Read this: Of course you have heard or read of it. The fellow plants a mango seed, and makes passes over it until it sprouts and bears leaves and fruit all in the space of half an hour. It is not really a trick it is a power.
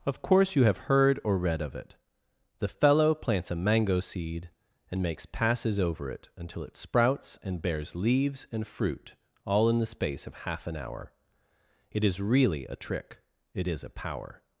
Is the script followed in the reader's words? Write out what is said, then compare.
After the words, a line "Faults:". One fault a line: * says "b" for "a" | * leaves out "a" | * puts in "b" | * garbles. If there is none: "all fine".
Of course you have heard or read of it. The fellow plants a mango seed, and makes passes over it until it sprouts and bears leaves and fruit all in the space of half an hour. It is really a trick it is a power.
Faults:
* leaves out "not"